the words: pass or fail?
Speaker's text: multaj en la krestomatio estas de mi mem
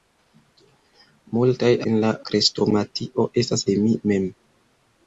pass